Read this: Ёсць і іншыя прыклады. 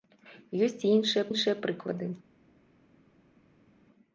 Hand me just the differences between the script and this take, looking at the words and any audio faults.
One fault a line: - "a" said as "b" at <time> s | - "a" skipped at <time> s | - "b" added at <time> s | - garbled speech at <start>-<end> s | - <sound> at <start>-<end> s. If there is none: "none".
- "іншыя" added at 1.3 s